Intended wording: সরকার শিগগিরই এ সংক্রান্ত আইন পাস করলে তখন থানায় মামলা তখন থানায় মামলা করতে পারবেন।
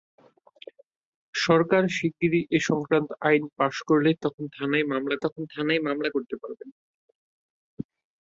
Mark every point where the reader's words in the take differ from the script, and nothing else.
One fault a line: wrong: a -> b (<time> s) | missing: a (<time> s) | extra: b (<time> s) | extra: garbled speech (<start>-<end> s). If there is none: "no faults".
no faults